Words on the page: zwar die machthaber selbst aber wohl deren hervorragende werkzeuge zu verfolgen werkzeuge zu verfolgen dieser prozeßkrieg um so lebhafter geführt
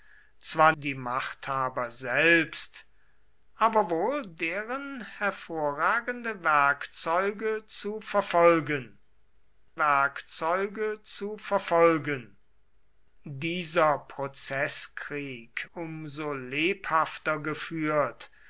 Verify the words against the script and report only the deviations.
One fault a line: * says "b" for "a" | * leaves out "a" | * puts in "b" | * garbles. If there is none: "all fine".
all fine